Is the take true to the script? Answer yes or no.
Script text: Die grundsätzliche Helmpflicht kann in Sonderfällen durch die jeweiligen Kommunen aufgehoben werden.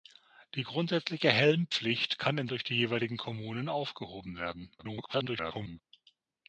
no